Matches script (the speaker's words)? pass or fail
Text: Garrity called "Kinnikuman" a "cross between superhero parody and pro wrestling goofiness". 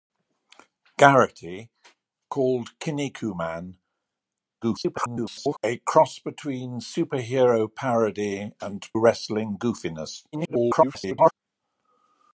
fail